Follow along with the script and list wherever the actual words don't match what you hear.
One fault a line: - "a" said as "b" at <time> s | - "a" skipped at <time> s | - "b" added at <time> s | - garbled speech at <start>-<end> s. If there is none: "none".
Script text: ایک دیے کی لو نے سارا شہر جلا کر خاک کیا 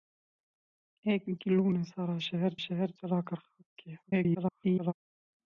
- "دیے" skipped at 1.2 s
- "شہر" added at 2.6 s
- garbled speech at 4.0-4.9 s